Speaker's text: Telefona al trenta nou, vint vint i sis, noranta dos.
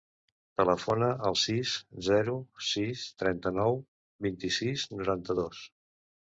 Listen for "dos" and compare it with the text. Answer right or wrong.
right